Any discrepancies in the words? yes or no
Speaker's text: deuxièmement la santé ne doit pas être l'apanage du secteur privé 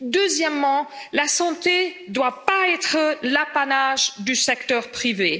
no